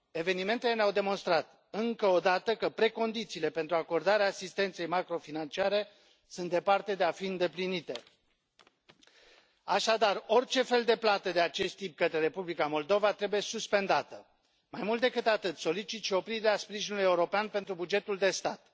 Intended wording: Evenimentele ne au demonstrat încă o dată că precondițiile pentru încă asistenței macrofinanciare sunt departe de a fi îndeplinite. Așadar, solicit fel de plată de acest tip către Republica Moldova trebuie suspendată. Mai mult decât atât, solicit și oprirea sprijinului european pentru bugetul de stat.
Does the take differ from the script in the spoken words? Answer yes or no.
yes